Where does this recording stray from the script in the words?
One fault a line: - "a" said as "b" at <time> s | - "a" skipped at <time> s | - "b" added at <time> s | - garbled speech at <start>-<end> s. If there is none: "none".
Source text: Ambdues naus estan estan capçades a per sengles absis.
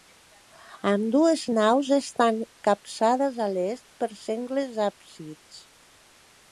- "estan" skipped at 2.4 s
- "l'est" added at 3.6 s